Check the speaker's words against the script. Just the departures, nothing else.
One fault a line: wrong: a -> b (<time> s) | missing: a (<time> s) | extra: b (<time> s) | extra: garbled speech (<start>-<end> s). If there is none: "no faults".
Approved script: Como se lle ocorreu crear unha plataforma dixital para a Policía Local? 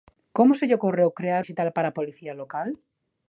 missing: unha plataforma (1.4 s)